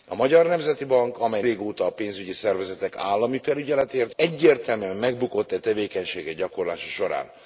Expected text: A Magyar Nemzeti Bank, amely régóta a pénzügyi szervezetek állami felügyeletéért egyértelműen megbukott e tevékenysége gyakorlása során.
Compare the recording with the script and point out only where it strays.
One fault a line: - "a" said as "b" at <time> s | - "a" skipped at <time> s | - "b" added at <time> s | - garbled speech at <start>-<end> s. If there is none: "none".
none